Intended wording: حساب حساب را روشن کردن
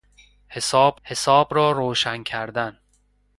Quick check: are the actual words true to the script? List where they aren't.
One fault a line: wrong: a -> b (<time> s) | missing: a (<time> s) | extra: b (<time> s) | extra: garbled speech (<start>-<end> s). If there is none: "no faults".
no faults